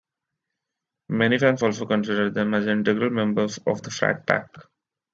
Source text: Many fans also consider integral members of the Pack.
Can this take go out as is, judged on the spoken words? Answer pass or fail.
fail